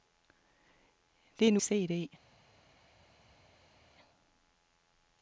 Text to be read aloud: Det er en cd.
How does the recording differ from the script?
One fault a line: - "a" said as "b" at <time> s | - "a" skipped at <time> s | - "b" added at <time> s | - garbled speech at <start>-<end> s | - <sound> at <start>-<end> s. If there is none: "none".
none